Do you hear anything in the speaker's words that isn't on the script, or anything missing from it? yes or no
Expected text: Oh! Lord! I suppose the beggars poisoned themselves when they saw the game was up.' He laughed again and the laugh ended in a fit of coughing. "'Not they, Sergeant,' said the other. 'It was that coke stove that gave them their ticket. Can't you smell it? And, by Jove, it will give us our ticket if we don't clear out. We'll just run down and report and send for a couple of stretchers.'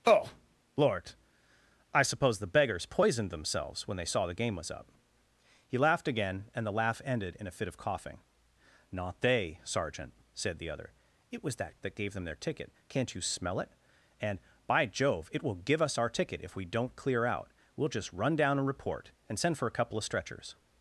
yes